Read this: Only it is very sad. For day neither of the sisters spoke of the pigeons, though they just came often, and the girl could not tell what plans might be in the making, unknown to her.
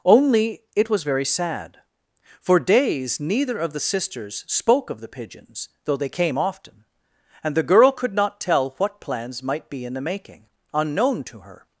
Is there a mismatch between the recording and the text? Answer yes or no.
yes